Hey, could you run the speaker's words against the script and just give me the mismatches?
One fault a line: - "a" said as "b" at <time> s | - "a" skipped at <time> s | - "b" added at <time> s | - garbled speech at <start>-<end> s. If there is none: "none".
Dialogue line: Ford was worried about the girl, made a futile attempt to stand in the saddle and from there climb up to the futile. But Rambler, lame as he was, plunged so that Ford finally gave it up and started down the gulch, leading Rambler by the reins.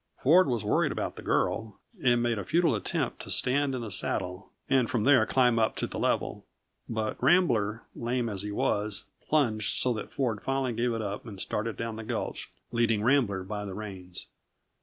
- "and" added at 2.0 s
- "futile" said as "level" at 6.0 s